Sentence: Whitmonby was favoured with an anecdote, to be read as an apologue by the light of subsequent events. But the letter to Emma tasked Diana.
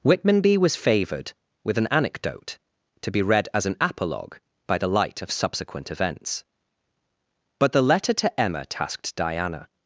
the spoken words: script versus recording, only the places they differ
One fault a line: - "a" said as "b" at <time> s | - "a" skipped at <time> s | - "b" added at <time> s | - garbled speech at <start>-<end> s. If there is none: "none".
none